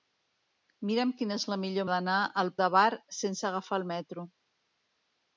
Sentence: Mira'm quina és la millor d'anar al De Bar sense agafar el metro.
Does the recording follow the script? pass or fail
pass